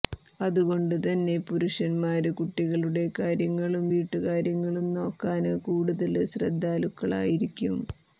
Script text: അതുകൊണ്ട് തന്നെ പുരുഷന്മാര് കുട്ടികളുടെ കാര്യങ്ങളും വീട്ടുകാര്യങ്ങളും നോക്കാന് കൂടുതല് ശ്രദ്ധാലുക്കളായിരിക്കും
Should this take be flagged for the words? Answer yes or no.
no